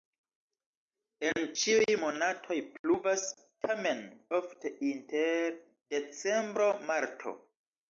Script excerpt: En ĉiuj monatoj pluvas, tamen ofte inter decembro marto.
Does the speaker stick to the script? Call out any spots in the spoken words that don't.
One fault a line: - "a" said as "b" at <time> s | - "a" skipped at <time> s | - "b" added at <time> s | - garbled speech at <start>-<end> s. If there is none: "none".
none